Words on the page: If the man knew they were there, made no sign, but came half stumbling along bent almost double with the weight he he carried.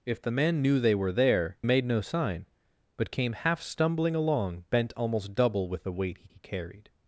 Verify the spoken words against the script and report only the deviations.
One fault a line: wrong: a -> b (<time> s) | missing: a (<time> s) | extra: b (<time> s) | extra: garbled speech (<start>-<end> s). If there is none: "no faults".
no faults